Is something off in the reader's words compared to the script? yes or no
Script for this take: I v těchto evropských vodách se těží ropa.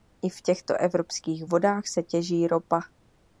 no